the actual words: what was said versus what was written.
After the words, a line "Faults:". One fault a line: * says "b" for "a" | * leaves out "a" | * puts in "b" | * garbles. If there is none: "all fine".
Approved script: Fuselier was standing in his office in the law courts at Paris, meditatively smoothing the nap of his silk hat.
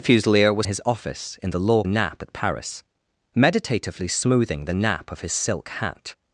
Fuselier was his office in the law nap at Paris, meditatively smoothing the nap of his silk hat.
Faults:
* leaves out "standing in"
* says "nap" for "courts"